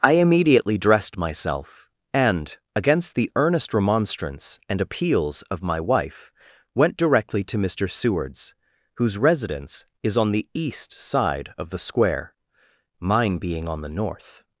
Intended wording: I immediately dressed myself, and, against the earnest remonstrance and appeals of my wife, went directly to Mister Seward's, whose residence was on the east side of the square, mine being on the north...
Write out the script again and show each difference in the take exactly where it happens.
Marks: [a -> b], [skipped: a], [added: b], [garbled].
I immediately dressed myself, and, against the earnest remonstrance and appeals of my wife, went directly to Mister Seward's, whose residence [was -> is] on the east side of the square, mine being on the north...